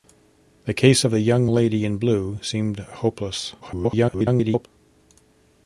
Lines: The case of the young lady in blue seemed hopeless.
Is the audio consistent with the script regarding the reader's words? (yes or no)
no